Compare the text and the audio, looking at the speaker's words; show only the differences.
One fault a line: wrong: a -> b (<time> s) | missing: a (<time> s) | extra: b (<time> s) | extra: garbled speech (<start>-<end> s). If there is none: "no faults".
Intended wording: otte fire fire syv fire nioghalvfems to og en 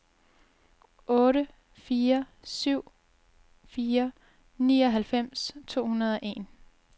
missing: fire (2.2 s)
extra: hundrede (5.9 s)